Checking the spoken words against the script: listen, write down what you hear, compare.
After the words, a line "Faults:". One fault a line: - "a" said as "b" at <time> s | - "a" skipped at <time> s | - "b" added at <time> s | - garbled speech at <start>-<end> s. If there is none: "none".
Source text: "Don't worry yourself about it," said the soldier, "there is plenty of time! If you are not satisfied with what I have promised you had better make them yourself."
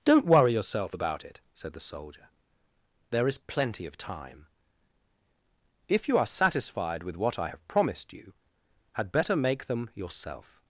"Don't worry yourself about it," said the soldier, "there is plenty of time! If you are satisfied with what I have promised you had better make them yourself."
Faults:
- "not" skipped at 6.3 s